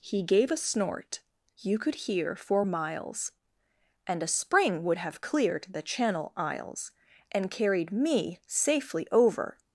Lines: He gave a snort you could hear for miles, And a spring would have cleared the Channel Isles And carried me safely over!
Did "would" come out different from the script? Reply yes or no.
no